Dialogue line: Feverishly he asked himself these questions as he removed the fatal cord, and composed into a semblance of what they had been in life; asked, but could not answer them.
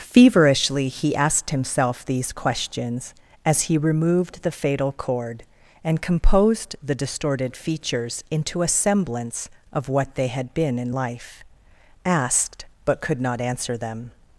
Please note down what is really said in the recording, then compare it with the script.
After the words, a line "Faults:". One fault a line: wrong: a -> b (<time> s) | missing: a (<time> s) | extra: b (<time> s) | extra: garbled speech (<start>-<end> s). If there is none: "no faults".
Feverishly he asked himself these questions as he removed the fatal cord, and composed the distorted features into a semblance of what they had been in life; asked, but could not answer them.
Faults:
extra: the distorted features (6.8 s)